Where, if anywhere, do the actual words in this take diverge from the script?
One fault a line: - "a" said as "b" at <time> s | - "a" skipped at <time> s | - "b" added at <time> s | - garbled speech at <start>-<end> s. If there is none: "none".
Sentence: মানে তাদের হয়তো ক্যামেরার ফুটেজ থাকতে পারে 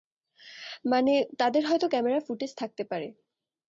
none